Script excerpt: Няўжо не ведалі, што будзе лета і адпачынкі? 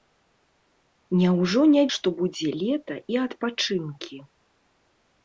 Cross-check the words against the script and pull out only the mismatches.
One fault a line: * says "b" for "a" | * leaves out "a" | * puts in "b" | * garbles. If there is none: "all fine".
* leaves out "ведалі"